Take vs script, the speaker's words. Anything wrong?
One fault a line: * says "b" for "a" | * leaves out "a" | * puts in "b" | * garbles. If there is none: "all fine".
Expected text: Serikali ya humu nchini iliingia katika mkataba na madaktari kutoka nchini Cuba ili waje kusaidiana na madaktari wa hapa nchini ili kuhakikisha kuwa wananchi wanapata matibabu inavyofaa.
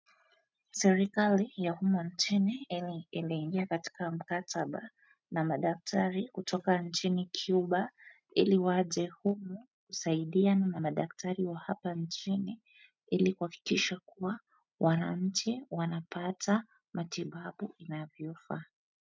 * puts in "humu"